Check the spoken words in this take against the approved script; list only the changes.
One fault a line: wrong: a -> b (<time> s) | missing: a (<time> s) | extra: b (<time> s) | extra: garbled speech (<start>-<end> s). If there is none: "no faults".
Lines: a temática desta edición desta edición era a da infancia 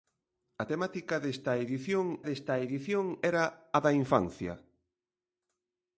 no faults